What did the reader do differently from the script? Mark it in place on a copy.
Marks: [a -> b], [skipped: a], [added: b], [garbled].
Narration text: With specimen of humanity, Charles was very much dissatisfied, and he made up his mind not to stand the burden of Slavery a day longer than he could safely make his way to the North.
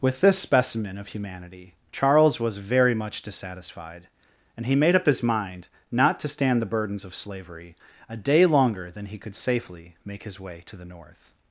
With [added: this] specimen of humanity, Charles was very much dissatisfied, and he made up his mind not to stand the [burden -> burdens] of Slavery a day longer than he could safely make his way to the North.